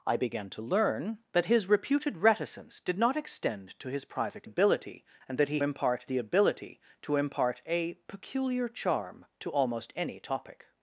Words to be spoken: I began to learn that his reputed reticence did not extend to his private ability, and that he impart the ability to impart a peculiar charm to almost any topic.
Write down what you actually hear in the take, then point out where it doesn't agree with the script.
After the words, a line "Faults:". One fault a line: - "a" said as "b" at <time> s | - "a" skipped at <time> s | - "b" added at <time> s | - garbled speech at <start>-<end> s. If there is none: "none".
I began to learn that his reputed reticence did not extend to his private ability, and that he impart the ability to impart a peculiar charm to almost any topic.
Faults:
none